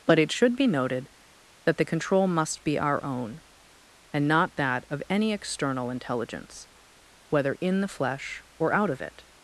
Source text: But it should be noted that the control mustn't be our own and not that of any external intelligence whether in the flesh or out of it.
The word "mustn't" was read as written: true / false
false